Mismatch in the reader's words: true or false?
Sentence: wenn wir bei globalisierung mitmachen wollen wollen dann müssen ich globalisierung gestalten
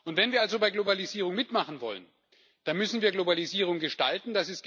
true